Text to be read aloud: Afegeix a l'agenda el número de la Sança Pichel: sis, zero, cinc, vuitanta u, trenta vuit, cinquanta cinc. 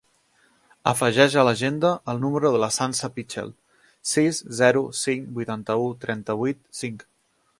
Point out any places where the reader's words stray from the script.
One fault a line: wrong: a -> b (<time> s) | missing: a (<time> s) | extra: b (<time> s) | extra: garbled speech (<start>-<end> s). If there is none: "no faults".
missing: cinquanta (6.7 s)